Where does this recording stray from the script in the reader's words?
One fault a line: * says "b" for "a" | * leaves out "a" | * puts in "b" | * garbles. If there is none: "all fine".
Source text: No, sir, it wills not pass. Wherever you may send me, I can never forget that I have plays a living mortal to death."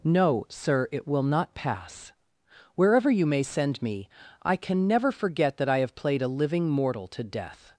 * says "will" for "wills"
* says "played" for "plays"